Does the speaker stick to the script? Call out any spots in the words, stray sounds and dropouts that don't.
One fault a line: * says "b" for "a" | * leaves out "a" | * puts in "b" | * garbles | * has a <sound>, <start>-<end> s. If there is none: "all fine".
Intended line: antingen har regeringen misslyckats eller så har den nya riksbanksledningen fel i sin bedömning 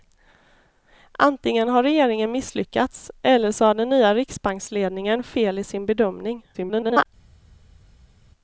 * garbles